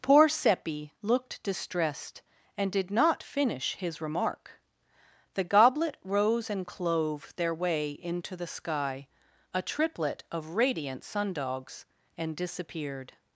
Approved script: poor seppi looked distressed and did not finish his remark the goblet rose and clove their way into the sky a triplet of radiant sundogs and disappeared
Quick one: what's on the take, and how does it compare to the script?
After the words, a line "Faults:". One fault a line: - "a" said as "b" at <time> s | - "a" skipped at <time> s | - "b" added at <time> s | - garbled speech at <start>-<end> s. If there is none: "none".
poor seppi looked distressed and did not finish his remark the goblet rose and clove their way into the sky a triplet of radiant sundogs and disappeared
Faults:
none